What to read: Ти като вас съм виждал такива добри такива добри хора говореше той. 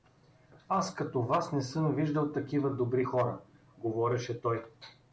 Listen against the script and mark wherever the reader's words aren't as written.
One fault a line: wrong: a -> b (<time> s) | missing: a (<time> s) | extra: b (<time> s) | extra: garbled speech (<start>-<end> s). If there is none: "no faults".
wrong: Ти -> Аз (0.7 s)
extra: не (1.5 s)
missing: такива добри (3.0 s)